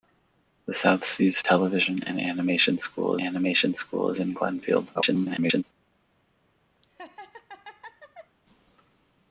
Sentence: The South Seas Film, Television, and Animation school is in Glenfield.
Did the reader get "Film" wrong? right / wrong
wrong